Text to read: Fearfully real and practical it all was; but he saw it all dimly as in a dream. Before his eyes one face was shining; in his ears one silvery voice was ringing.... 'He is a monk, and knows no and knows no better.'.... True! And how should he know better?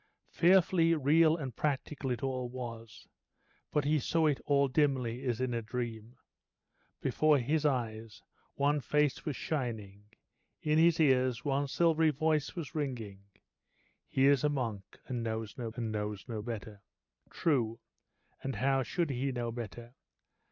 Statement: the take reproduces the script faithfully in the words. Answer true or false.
true